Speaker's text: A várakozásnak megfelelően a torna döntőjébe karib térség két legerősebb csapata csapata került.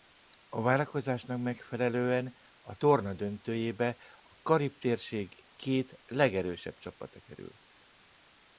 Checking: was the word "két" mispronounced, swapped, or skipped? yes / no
no